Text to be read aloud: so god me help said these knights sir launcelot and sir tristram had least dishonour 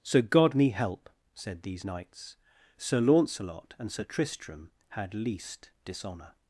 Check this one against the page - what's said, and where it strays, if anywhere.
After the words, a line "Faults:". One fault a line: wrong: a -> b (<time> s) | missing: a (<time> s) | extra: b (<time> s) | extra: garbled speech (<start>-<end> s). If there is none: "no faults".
so god me help said these knights sir launcelot and sir tristram had least dishonour
Faults:
no faults